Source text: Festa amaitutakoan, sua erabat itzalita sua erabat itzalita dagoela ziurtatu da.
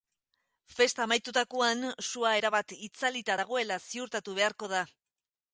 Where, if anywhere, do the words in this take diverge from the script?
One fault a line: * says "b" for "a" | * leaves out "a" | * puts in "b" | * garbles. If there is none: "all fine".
* leaves out "sua erabat itzalita"
* puts in "beharko"